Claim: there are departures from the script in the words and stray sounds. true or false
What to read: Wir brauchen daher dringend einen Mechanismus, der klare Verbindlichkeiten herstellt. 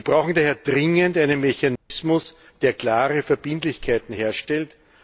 true